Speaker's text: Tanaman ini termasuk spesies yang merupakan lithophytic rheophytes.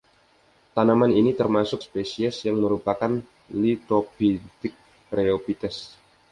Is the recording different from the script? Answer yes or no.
no